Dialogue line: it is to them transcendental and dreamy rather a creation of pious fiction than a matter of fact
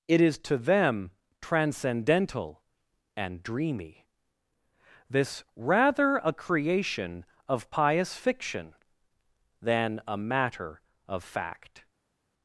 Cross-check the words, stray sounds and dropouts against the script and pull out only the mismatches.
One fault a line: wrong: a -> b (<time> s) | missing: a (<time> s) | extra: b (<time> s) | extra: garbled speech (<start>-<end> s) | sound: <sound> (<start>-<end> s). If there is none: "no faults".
extra: this (5.1 s)